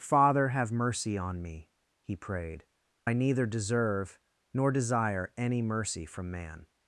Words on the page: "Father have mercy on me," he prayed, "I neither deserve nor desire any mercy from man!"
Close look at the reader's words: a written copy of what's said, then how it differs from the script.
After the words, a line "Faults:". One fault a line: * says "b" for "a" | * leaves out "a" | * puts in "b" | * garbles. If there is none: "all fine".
"Father have mercy on me," he prayed, "I neither deserve nor desire any mercy from man!"
Faults:
all fine